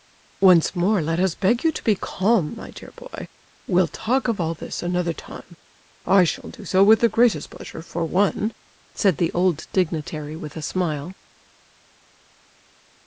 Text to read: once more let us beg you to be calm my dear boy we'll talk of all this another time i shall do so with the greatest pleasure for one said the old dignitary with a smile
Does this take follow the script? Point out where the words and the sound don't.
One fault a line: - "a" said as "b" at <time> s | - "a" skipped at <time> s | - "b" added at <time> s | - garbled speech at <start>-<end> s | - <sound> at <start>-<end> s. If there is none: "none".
none